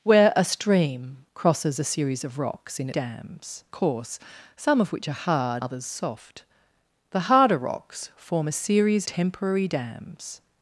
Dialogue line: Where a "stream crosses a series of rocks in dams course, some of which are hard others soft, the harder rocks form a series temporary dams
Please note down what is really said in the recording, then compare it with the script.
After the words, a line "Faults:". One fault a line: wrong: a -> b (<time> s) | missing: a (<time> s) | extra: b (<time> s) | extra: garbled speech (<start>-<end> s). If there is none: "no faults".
Where a "stream crosses a series of rocks in dams course, some of which are hard others soft, the harder rocks form a series temporary dams
Faults:
no faults